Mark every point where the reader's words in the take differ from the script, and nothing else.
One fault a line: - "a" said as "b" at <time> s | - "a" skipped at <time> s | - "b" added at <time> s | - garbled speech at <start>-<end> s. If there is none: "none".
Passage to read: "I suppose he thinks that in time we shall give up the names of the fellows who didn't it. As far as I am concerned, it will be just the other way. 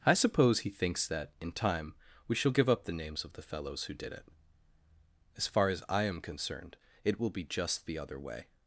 - "didn't" said as "did" at 3.9 s